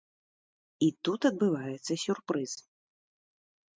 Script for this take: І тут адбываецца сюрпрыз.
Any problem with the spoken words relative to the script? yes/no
no